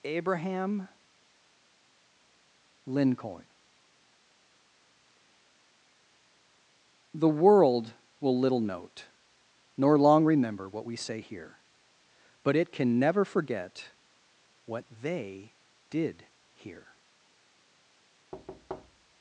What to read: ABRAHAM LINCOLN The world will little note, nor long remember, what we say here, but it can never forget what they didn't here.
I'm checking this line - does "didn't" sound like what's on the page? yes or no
no